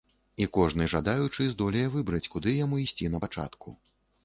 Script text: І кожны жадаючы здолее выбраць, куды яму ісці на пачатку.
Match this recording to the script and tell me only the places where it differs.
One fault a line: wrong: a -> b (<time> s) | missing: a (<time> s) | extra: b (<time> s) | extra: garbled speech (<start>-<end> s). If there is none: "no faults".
no faults